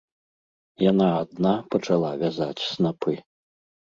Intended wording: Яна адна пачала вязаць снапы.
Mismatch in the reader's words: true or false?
false